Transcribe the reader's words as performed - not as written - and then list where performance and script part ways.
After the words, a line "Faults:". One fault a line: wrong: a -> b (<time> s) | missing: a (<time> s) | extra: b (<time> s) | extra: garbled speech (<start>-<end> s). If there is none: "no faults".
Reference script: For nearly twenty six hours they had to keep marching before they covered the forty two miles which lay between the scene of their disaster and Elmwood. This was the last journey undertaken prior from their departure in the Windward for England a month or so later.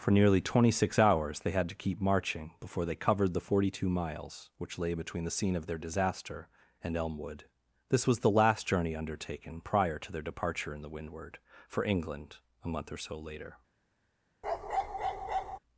For nearly twenty six hours they had to keep marching before they covered the forty two miles which lay between the scene of their disaster and Elmwood. This was the last journey undertaken prior to their departure in the Windward for England a month or so later.
Faults:
wrong: from -> to (10.0 s)